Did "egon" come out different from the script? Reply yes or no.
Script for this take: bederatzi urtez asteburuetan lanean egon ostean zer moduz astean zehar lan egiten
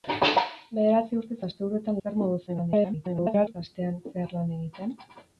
yes